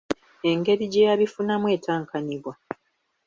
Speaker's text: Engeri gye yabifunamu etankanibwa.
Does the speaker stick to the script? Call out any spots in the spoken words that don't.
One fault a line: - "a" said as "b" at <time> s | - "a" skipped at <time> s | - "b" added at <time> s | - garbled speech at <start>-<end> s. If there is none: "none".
none